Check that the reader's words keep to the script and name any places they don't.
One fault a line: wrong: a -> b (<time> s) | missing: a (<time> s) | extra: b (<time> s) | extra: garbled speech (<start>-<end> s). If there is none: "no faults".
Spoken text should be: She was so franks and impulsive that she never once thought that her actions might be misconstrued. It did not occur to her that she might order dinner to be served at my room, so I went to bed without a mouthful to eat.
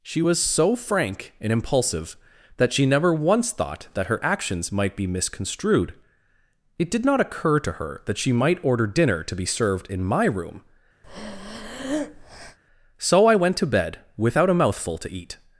wrong: franks -> frank (0.8 s)
wrong: at -> in (9.9 s)